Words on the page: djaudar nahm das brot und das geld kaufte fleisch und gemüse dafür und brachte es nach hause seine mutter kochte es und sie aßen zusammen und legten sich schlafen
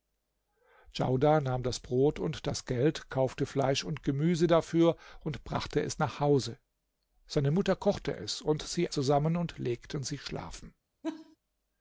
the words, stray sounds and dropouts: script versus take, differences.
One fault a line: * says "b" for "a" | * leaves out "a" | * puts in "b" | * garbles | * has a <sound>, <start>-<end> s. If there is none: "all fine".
* leaves out "aßen"
* has a laugh, 11.0-11.4 s